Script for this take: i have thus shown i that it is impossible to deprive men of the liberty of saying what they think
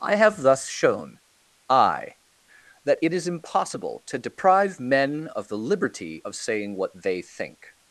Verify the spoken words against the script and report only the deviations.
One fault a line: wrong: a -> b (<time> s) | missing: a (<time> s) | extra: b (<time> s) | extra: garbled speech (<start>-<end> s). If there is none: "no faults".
no faults